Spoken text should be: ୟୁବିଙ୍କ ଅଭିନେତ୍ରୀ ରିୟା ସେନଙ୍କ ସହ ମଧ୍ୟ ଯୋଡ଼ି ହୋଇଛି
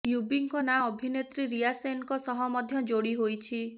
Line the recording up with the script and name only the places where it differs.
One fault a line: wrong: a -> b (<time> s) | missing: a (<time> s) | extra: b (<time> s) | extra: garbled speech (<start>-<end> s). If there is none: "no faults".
extra: ନାଁ (0.6 s)